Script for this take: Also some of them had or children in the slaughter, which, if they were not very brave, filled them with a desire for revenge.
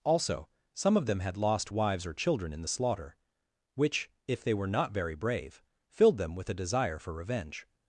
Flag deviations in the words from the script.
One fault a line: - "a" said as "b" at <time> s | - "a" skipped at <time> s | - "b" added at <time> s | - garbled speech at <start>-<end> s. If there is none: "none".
- "lost wives" added at 1.4 s